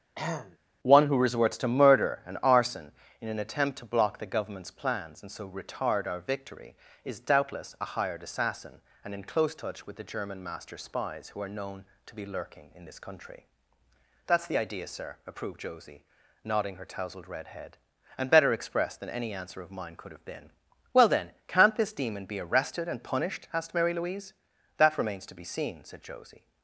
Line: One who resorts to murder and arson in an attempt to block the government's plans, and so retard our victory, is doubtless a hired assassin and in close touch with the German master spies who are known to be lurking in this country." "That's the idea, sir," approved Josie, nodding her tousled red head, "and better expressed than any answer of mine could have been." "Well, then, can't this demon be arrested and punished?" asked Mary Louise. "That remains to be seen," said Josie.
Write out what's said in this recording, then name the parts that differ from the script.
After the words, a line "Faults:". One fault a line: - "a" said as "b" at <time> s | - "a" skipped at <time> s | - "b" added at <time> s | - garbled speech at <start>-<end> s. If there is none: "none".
One who resorts to murder and arson in an attempt to block the government's plans, and so retard our victory, is doubtless a hired assassin and in close touch with the German master spies who are known to be lurking in this country." "That's the idea, sir," approved Josie, nodding her tousled red head, "and better expressed than any answer of mine could have been." "Well, then, can't this demon be arrested and punished?" asked Mary Louise. "That remains to be seen," said Josie.
Faults:
none